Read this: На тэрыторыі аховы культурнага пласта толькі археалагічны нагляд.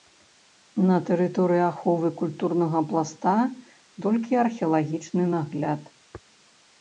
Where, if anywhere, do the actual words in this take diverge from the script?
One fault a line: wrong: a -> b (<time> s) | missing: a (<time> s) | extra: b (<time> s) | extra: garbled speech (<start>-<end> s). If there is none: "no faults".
no faults